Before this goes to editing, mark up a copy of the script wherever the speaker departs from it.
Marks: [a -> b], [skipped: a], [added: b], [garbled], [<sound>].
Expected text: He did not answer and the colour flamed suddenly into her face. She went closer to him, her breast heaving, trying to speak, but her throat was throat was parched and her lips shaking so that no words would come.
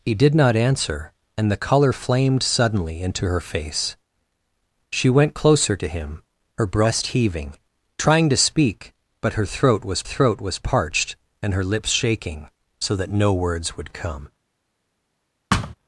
He did not answer and the colour flamed suddenly into her face. She went closer to him, her breast heaving, trying to speak, but her throat was throat was parched and her lips shaking so that no words would come. [thud]